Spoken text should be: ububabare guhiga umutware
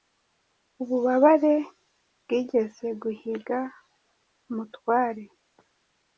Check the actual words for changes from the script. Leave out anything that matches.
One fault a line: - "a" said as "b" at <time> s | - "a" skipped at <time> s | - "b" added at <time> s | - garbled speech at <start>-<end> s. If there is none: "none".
- "bwigeze" added at 2.2 s